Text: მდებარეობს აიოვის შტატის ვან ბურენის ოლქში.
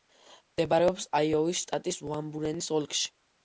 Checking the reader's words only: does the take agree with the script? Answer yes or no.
yes